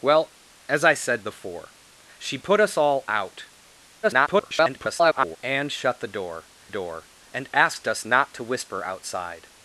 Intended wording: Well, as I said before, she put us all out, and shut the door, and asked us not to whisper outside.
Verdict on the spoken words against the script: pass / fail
fail